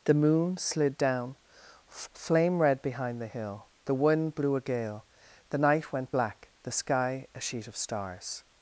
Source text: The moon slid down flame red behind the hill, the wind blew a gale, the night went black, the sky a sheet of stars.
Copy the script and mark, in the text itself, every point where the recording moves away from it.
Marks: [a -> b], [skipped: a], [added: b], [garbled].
The moon slid down flame red behind the hill, the wind blew a gale, the night went black, the sky a sheet of stars.